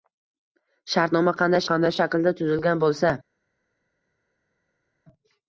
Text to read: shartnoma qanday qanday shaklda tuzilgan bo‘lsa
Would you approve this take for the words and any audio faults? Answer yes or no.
yes